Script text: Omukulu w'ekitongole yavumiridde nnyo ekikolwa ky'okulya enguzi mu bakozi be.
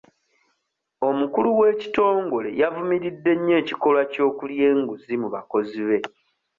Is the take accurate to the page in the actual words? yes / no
yes